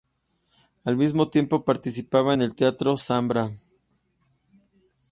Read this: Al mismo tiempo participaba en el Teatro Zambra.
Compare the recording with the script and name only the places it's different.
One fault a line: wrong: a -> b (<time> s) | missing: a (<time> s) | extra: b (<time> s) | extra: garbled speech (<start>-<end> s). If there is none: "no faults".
no faults